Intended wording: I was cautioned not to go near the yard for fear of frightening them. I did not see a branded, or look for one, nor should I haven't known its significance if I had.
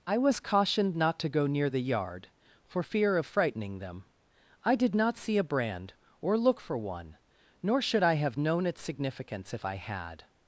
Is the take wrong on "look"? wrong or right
right